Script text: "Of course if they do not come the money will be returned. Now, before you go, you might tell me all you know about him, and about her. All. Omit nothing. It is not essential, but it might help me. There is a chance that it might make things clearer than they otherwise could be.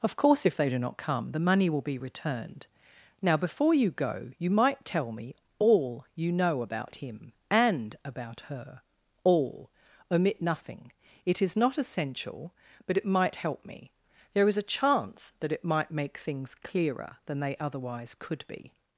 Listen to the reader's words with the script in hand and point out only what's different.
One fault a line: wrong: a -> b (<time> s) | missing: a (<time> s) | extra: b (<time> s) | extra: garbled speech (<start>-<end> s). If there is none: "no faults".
no faults